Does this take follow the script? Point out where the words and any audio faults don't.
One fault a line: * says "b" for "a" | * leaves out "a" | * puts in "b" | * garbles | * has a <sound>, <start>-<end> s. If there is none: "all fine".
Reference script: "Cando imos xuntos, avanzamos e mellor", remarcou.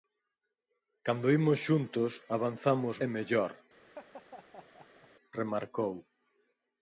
* has a laugh, 3.8-5.1 s